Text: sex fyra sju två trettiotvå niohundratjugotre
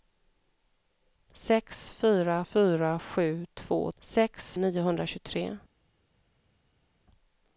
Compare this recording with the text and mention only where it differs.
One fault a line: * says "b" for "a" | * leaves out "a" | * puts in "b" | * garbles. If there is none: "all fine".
* puts in "fyra"
* says "sex" for "trettiotvå"